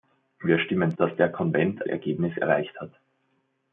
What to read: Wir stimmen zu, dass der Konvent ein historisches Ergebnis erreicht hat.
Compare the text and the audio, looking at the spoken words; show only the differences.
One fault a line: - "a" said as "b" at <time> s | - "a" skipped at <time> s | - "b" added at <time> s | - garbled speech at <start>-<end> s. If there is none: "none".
- "zu" skipped at 1.0 s
- "ein historisches" skipped at 1.9 s